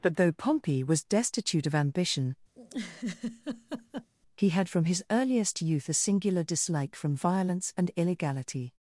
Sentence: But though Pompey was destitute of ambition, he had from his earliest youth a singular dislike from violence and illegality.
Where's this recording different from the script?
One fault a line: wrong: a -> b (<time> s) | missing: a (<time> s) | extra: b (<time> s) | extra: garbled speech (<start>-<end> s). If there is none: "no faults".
no faults